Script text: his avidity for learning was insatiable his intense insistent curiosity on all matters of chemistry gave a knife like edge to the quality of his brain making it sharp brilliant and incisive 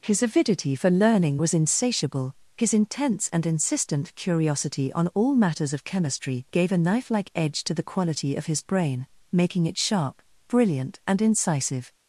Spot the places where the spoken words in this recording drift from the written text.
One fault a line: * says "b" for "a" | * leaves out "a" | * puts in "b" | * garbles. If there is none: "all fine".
* puts in "and"